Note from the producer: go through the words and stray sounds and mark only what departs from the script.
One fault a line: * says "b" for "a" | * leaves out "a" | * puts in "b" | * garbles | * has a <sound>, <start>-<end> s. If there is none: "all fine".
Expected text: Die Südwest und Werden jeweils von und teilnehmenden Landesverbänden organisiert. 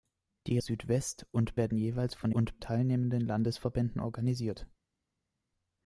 all fine